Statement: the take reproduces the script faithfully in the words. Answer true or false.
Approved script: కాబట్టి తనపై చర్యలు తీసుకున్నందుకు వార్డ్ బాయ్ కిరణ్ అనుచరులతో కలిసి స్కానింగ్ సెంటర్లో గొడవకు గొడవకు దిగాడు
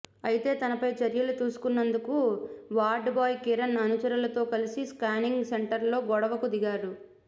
false